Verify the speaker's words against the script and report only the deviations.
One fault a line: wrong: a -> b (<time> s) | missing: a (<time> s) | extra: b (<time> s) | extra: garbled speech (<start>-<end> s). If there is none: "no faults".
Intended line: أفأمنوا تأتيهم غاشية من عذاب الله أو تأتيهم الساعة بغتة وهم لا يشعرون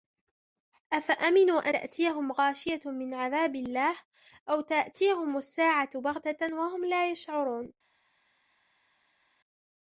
no faults